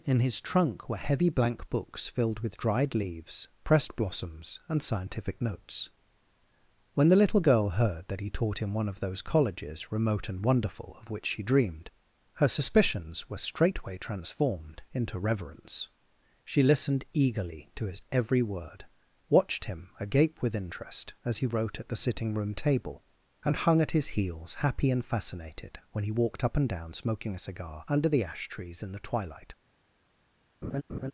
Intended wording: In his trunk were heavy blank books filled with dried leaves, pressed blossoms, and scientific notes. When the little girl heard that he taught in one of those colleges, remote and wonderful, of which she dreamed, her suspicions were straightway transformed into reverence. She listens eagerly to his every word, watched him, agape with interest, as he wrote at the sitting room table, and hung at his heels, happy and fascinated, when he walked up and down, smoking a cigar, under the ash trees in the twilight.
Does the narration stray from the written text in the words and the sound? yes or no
yes